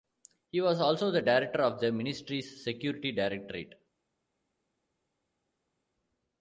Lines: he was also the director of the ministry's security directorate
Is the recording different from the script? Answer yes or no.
no